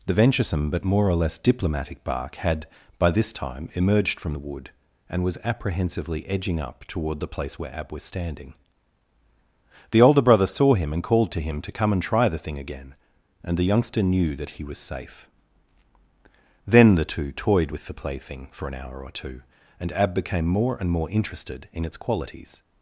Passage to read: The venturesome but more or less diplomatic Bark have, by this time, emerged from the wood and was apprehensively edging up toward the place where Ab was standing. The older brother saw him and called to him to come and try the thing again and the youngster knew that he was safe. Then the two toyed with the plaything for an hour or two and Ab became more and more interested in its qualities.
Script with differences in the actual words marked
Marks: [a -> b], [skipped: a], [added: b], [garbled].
The venturesome but more or less diplomatic Bark [have, -> had] by this time, emerged from the wood and was apprehensively edging up toward the place where Ab was standing. The older brother saw him and called to him to come and try the thing again and the youngster knew that he was safe. Then the two toyed with the plaything for an hour or two and Ab became more and more interested in its qualities.